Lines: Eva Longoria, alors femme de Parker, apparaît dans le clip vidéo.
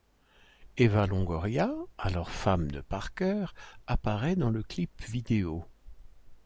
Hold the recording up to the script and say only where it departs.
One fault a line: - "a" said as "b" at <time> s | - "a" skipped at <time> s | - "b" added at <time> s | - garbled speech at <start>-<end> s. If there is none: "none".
none